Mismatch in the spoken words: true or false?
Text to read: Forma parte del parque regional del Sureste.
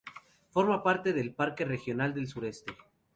false